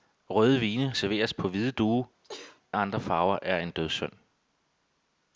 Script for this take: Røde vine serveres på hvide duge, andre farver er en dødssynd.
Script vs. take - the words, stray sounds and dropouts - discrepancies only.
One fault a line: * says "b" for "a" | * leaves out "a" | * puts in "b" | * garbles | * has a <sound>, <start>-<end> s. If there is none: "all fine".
* has a sneeze, 2.2-2.6 s